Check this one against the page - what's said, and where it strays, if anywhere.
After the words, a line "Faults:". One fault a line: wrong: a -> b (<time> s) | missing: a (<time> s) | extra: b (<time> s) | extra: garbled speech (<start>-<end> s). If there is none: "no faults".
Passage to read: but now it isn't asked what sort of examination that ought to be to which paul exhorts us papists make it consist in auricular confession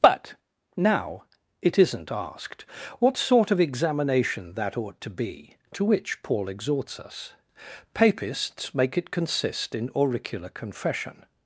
but now it isn't asked what sort of examination that ought to be to which paul exhorts us papists make it consist in auricular confession
Faults:
no faults